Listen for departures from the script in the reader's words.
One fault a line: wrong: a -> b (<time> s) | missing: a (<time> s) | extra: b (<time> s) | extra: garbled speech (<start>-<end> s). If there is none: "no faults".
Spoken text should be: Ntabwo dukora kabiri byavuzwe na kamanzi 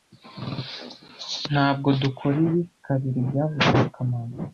extra: ibi (2.5 s)